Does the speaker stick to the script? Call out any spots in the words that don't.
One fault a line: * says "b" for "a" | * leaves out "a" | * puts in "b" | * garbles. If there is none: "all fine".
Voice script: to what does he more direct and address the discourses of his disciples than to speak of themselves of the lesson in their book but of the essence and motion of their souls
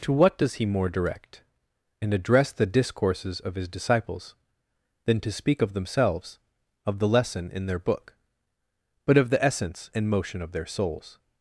all fine